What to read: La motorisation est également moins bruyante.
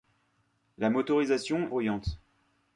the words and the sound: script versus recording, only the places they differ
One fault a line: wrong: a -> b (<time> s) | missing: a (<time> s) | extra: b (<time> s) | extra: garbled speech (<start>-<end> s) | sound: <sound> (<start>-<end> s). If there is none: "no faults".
missing: est également moins (1.7 s)